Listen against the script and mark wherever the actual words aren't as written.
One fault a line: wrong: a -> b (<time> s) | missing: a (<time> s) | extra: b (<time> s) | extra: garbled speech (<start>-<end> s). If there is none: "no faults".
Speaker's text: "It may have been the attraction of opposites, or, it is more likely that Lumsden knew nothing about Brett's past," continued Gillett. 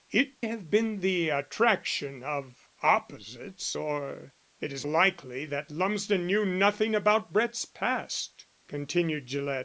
missing: may (0.3 s)
missing: more (4.9 s)